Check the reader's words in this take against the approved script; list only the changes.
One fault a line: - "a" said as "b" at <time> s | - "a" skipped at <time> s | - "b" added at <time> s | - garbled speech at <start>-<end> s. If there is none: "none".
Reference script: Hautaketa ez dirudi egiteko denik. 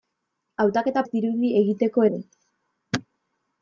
none